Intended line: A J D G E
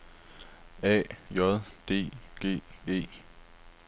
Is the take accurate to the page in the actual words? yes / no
yes